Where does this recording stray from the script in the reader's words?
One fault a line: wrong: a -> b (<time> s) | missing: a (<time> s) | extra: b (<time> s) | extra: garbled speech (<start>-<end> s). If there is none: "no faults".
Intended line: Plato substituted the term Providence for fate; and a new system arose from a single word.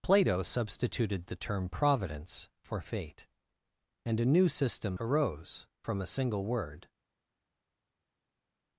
no faults